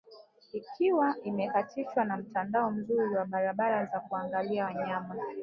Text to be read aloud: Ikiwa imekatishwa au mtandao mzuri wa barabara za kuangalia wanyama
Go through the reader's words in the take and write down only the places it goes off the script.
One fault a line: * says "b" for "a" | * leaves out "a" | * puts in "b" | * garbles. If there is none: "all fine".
* says "na" for "au"